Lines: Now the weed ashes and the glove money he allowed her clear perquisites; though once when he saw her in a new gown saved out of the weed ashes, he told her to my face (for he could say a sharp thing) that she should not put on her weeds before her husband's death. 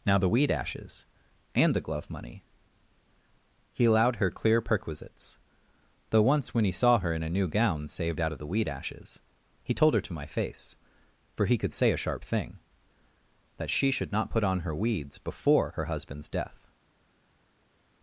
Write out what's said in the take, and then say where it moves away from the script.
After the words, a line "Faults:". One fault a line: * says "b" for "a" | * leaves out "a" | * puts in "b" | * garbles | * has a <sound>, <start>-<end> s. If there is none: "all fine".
Now the weed ashes and the glove money he allowed her clear perquisites; though once when he saw her in a new gown saved out of the weed ashes, he told her to my face (for he could say a sharp thing) that she should not put on her weeds before her husband's death.
Faults:
all fine